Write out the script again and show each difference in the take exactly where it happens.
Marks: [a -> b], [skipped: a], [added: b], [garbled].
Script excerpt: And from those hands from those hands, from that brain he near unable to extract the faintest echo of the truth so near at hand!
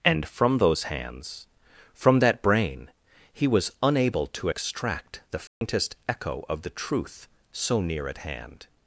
And from those hands from [skipped: those hands, from] that brain he [near -> was] unable to extract the faintest echo of the truth so near at hand!